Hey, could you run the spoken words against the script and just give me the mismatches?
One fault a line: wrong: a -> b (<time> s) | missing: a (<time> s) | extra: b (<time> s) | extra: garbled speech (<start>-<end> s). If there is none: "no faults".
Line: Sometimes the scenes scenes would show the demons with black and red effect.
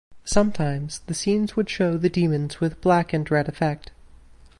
missing: scenes (1.6 s)